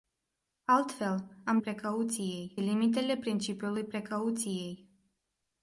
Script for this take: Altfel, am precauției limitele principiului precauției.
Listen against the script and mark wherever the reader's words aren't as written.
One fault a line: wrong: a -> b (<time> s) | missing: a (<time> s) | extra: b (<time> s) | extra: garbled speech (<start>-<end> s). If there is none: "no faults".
no faults